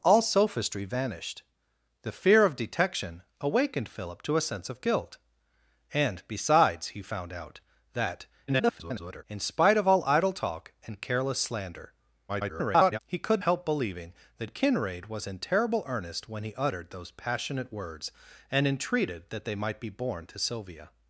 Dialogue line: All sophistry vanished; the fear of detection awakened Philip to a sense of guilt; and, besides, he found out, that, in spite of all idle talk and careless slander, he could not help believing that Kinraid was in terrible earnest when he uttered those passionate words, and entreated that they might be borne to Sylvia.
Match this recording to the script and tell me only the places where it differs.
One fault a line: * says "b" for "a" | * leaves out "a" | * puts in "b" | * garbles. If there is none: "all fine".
* garbles
* garbles
* leaves out "not"